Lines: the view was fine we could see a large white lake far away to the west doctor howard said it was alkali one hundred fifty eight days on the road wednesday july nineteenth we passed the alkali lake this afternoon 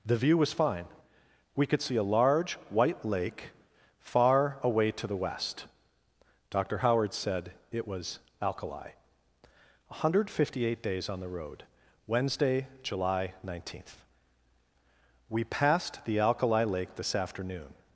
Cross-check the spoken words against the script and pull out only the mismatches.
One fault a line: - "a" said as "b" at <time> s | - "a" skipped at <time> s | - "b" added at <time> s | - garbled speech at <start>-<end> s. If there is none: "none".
none